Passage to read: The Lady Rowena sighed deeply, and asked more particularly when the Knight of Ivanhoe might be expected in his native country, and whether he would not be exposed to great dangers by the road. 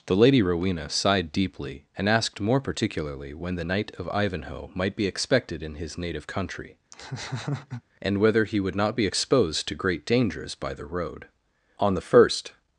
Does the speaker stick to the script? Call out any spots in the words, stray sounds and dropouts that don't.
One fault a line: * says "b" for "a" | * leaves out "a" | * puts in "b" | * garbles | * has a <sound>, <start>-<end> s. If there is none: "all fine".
* has a laugh, 6.9-7.8 s
* puts in "On the first"